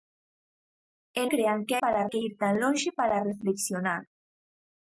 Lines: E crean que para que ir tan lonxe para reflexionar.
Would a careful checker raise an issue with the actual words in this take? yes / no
no